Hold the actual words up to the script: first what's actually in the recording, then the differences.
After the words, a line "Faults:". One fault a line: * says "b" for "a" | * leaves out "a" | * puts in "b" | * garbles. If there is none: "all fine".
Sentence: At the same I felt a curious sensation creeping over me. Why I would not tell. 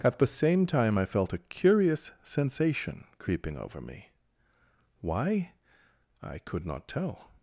At the same time I felt a curious sensation creeping over me. Why I could not tell.
Faults:
* puts in "time"
* says "could" for "would"